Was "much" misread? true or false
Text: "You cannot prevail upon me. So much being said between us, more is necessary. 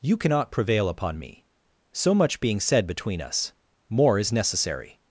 false